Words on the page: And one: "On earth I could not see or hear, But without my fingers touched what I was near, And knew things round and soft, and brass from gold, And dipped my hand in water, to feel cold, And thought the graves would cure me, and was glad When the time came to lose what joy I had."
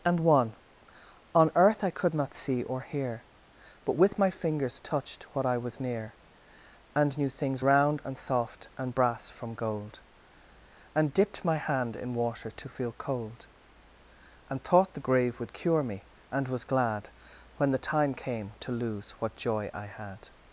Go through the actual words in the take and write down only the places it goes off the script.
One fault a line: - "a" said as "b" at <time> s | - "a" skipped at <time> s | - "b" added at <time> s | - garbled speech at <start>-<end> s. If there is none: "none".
- "without" said as "with" at 4.0 s
- "graves" said as "grave" at 15.1 s